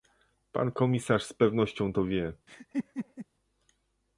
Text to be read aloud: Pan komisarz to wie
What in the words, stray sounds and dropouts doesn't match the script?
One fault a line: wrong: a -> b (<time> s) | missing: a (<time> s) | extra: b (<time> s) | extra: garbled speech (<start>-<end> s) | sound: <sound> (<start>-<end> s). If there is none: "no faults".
extra: z pewnością (1.2 s)
sound: laugh (2.5-3.3 s)